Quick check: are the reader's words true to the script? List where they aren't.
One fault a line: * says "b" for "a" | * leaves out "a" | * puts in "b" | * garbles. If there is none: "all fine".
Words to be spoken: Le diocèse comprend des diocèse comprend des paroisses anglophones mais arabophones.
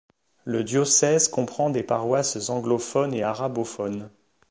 * leaves out "diocèse comprend des"
* says "et" for "mais"